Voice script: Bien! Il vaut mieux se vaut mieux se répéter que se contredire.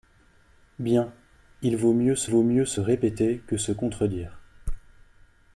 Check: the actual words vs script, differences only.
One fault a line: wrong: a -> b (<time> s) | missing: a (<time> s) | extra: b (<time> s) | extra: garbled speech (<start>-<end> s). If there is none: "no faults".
no faults